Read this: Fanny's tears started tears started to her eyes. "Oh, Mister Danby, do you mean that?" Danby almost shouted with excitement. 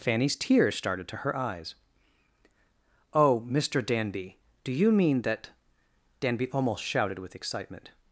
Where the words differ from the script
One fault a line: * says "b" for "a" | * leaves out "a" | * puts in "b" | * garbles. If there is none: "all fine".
* leaves out "tears started"